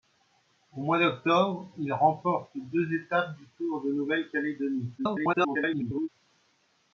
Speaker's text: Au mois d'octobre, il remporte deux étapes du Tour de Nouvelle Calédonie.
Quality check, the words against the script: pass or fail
fail